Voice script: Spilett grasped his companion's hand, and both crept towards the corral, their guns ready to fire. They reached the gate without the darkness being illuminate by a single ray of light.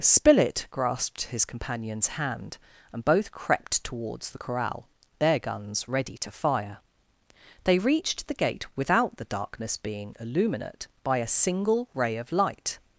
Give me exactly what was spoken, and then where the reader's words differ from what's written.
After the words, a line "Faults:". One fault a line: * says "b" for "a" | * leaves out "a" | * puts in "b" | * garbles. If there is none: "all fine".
Spilett grasped his companion's hand, and both crept towards the corral, their guns ready to fire. They reached the gate without the darkness being illuminate by a single ray of light.
Faults:
all fine